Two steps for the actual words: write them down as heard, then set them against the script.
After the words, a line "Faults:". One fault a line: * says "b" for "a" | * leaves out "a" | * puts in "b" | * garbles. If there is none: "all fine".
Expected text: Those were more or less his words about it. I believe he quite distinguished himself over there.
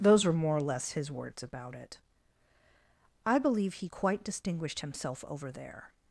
Those were more or less his words about it. I believe he quite distinguished himself over there.
Faults:
all fine